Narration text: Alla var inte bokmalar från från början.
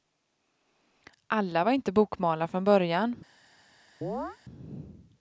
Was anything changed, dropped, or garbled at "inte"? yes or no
no